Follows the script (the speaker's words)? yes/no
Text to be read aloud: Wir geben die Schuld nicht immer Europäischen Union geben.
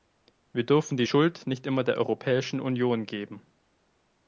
no